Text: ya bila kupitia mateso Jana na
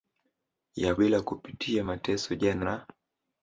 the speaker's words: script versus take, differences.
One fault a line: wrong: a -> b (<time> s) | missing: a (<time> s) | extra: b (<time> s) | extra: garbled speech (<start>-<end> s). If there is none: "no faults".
no faults